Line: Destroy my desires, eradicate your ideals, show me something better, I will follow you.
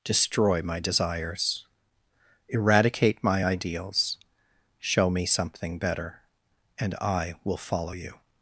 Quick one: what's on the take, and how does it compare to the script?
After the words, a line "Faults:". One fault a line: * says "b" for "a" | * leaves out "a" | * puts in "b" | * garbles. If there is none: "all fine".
Destroy my desires, eradicate my ideals, show me something better, and I will follow you.
Faults:
* says "my" for "your"
* puts in "and"